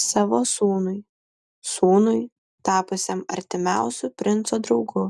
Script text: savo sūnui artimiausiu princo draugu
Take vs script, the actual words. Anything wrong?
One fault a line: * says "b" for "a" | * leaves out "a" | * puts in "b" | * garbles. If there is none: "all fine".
* puts in "sūnui tapusiam"